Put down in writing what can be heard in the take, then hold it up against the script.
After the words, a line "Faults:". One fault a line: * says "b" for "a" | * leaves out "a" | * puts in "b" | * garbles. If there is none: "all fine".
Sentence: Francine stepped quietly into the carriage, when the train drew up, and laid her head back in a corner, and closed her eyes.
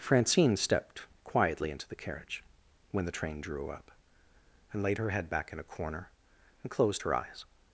Francine stepped quietly into the carriage, when the train drew up, and laid her head back in a corner, and closed her eyes.
Faults:
all fine